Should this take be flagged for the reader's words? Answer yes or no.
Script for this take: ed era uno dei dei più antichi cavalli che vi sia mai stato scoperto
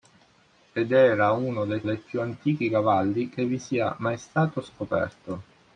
no